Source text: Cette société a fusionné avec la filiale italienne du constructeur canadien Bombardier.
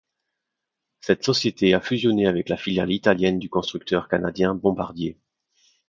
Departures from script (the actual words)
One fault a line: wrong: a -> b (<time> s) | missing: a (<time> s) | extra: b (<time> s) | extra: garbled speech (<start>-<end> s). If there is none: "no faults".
no faults